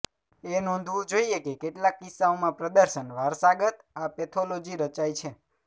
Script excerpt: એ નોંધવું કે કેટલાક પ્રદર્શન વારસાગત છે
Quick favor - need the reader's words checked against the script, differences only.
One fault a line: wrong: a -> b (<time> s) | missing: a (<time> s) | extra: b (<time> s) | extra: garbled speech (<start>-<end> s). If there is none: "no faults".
extra: જોઇએ (1.1 s)
extra: કિસ્સાઓમાં (2.0 s)
extra: આ પેથોલોજી રચાય (4.0 s)